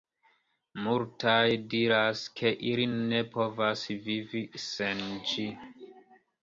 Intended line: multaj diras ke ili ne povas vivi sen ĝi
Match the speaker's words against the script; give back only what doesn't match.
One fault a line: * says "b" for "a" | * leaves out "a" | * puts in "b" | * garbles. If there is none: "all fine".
all fine